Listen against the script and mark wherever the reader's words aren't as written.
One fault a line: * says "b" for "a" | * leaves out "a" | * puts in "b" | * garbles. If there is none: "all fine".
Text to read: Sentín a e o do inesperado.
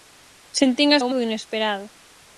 all fine